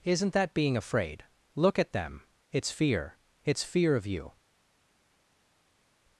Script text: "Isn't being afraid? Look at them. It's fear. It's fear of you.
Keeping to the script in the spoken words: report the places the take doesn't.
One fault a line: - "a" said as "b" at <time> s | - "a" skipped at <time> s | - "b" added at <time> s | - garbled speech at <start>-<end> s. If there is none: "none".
- "that" added at 0.3 s